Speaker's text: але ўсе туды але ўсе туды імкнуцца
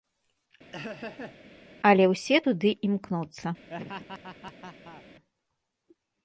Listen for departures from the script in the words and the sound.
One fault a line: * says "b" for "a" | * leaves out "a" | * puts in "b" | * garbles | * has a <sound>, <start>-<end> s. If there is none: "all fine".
* has a laugh, 0.7-1.4 s
* leaves out "але ўсе туды"
* has a laugh, 3.7-5.0 s